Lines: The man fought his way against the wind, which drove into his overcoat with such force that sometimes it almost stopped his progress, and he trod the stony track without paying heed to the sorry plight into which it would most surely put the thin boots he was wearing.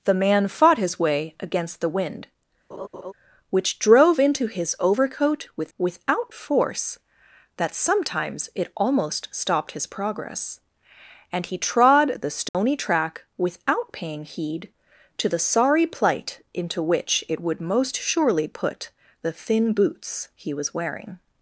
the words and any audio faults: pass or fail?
fail